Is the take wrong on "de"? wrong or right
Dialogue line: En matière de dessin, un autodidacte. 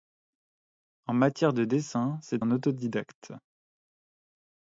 right